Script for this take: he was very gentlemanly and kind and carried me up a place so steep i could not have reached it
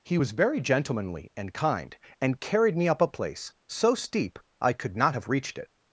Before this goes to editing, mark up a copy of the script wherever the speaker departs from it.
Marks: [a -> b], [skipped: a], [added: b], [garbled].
he was very gentlemanly and kind and carried me up a place so steep i could not have reached it